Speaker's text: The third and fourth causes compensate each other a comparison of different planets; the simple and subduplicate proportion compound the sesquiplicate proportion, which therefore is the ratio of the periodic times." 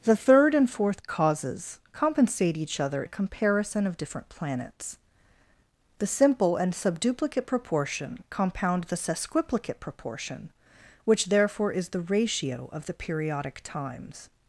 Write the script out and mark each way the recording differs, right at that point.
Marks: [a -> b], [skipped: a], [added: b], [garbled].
The third and fourth causes compensate each other a comparison of different planets; the simple and subduplicate proportion compound the sesquiplicate proportion, which therefore is the ratio of the periodic times."